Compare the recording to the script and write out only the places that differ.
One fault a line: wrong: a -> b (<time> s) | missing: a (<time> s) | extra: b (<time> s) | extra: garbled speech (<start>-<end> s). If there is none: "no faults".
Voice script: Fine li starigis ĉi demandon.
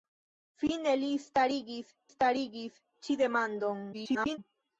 extra: starigis (2.1 s)
extra: garbled speech (3.9-4.4 s)